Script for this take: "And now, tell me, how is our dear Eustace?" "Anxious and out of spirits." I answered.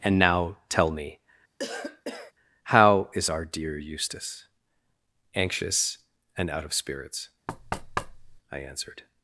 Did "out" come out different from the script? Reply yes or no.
no